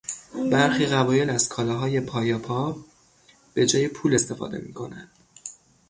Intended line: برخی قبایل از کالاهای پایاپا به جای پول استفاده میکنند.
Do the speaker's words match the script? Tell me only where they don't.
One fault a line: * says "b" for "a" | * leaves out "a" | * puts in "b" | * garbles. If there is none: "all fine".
all fine